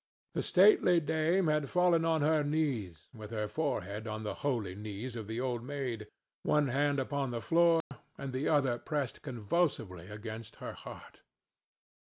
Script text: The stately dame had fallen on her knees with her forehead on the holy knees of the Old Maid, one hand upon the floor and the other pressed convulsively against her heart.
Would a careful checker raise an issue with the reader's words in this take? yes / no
no